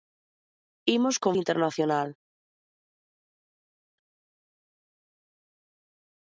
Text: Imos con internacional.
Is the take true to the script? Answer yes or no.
yes